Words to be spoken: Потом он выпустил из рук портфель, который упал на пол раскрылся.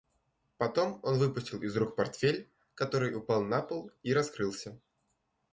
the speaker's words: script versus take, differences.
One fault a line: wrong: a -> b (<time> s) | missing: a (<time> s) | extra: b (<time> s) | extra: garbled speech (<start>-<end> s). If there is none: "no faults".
extra: и (4.0 s)